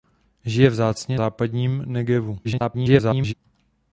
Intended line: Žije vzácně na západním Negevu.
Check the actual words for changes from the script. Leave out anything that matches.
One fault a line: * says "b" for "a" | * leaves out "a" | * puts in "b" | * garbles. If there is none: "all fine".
* leaves out "na"
* garbles